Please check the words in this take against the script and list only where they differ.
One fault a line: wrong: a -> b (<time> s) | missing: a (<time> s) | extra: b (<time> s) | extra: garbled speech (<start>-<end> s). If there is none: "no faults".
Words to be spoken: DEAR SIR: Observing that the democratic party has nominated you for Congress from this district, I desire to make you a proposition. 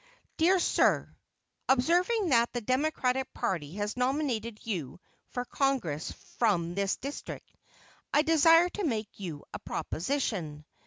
no faults